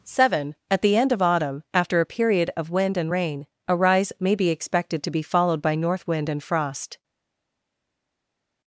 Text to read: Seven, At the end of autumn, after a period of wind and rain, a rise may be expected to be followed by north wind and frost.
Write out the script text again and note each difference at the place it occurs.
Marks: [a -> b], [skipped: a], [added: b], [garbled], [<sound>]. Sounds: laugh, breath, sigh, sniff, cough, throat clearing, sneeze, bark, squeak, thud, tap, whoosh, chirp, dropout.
Seven, At the end of autumn, after a period of wind and rain, a rise may be expected to be followed by north wind and frost.